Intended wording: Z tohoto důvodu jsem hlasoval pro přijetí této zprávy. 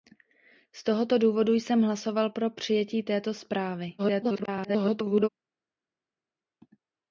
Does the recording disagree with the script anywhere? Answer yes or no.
yes